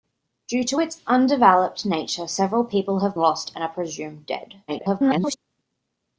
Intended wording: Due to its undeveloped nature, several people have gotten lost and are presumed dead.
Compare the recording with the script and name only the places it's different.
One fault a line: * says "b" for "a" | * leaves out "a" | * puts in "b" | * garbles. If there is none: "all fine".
* leaves out "gotten"
* garbles